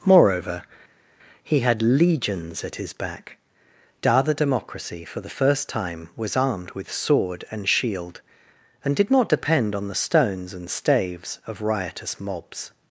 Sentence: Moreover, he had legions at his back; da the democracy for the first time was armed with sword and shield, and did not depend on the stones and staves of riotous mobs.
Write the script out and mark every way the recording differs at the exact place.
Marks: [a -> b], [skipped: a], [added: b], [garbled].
Moreover, he had legions at his back; da the democracy for the first time was armed with sword and shield, and did not depend on the stones and staves of riotous mobs.